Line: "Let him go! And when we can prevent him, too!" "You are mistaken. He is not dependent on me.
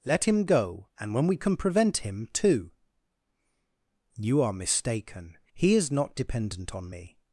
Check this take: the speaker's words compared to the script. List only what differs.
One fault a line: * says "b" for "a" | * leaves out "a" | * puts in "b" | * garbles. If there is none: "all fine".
all fine